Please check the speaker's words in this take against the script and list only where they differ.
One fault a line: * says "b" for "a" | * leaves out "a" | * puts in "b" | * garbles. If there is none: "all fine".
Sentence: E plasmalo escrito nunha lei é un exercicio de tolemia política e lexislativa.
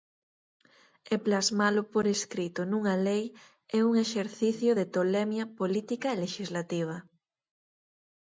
* puts in "por"